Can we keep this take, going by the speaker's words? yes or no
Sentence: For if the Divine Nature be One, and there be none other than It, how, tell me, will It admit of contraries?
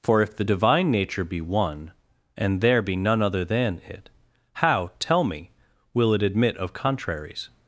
yes